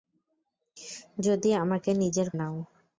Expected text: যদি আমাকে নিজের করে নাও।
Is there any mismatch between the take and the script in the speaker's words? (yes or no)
yes